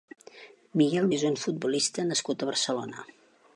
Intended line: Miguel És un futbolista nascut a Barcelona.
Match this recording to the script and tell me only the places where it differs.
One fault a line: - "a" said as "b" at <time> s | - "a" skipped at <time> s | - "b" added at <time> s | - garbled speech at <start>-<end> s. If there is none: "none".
none